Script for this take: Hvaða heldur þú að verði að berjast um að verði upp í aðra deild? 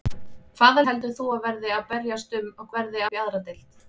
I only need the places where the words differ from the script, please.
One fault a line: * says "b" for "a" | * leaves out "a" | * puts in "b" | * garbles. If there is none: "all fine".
all fine